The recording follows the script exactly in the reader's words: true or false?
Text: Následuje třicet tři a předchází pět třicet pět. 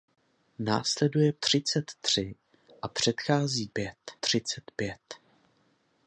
true